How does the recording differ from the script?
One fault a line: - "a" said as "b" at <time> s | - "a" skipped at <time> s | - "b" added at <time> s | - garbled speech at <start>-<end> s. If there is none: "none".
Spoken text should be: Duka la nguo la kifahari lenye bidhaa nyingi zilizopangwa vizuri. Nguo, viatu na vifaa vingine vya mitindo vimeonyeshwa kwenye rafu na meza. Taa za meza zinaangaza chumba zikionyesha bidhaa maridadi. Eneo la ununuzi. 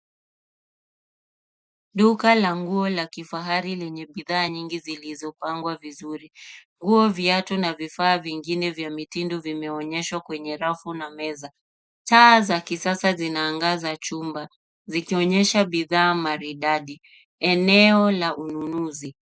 - "meza" said as "kisasa" at 12.6 s